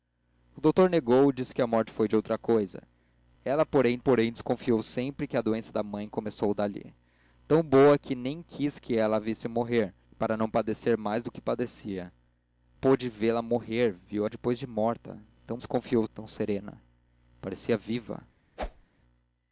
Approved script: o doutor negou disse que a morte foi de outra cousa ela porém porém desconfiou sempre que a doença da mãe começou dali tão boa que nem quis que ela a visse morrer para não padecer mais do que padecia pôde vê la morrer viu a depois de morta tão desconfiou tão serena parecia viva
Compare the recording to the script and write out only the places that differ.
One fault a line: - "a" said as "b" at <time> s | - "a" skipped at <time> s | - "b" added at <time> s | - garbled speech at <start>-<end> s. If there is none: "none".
none